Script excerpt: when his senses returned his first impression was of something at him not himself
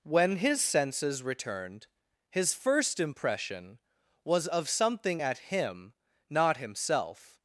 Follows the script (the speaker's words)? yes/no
yes